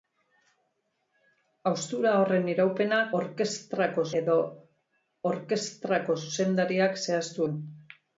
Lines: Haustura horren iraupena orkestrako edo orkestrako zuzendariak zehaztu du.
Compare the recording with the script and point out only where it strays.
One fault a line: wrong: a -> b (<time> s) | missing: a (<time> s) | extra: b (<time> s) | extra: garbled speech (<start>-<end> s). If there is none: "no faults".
no faults